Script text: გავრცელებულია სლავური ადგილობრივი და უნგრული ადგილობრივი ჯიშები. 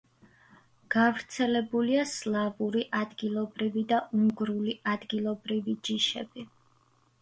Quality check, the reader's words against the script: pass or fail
pass